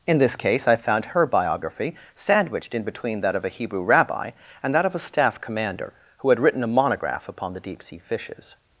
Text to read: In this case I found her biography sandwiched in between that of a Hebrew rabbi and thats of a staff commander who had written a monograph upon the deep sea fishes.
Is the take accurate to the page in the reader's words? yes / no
no